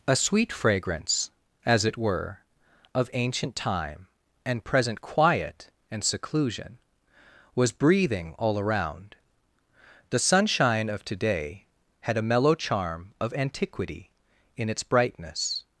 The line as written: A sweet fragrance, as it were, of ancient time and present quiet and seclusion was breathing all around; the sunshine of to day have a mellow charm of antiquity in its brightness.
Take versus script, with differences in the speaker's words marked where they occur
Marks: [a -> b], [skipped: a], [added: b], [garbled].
A sweet fragrance, as it were, of ancient time and present quiet and seclusion was breathing all around; the sunshine of to day [have -> had] a mellow charm of antiquity in its brightness.